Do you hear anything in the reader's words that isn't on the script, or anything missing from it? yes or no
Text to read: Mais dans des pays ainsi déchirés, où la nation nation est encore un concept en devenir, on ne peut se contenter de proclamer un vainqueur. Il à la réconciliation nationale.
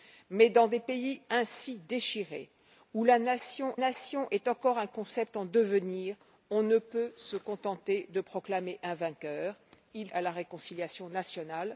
no